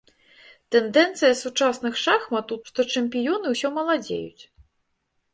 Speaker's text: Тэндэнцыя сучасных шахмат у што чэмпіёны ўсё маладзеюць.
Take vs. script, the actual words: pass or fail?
pass